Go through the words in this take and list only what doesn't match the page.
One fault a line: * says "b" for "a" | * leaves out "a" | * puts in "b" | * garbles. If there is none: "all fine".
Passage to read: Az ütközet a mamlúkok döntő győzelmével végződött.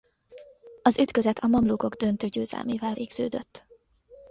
all fine